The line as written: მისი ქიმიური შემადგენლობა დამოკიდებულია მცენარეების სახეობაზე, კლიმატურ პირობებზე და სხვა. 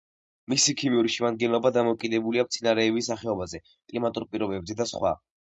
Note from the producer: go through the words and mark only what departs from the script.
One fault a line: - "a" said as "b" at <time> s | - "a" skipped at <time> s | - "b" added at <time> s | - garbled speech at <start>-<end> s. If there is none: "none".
none